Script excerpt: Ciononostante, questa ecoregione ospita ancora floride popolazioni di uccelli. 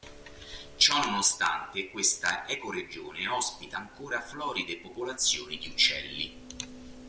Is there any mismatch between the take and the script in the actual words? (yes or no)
no